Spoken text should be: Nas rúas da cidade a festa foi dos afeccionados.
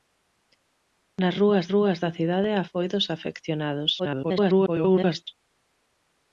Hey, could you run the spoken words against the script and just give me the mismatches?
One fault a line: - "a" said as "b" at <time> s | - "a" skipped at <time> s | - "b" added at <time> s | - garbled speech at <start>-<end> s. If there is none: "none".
- "rúas" added at 1.7 s
- "festa" skipped at 2.6 s
- garbled speech at 4.0-5.3 s